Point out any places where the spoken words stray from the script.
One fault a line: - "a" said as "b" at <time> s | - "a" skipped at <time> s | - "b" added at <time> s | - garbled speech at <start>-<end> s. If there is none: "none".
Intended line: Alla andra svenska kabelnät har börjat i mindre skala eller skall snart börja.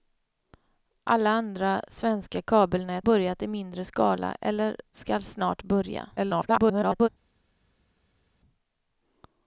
- "har" skipped at 3.1 s
- garbled speech at 6.2-7.1 s